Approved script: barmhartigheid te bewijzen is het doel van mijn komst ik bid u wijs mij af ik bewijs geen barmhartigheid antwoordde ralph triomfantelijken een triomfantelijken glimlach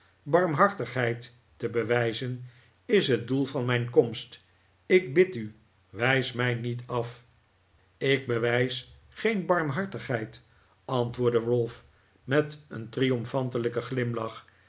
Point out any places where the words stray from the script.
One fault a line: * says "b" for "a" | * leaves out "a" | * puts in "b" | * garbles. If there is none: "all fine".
* puts in "niet"
* says "met" for "triomfantelijken"